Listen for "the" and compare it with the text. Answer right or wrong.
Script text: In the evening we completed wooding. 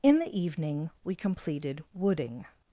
right